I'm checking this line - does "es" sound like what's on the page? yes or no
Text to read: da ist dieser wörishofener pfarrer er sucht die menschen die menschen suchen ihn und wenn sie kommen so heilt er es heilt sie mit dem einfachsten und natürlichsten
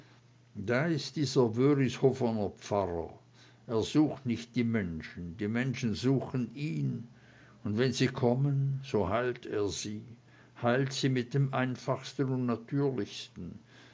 no